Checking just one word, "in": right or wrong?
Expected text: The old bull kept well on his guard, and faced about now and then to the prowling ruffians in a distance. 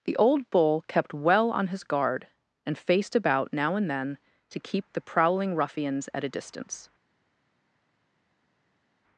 wrong